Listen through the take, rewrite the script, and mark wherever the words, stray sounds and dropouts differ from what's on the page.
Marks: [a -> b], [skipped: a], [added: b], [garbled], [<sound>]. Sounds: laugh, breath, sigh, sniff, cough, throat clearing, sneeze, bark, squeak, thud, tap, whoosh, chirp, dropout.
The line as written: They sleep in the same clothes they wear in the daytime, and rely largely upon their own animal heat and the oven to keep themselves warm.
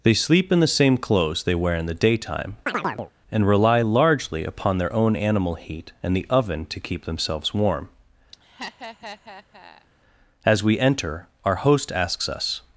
They sleep in the same clothes they wear in the daytime, [chirp] and rely largely upon their own animal heat and the oven to keep themselves warm. [laugh] [added: As we enter our host asks us]